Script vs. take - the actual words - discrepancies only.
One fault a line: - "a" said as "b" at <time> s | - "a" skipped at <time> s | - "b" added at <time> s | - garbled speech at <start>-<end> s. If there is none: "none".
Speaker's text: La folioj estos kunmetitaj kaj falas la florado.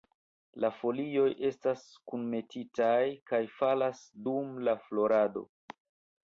- "estos" said as "estas" at 1.5 s
- "dum" added at 4.3 s